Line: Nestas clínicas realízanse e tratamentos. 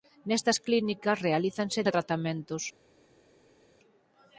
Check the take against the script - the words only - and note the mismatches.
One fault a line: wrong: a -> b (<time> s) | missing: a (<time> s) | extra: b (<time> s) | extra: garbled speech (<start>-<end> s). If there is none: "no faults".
no faults